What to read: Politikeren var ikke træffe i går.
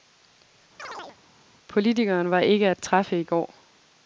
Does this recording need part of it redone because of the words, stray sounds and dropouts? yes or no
yes